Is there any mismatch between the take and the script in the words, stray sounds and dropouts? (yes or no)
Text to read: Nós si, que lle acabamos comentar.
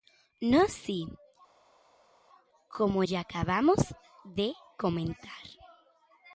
yes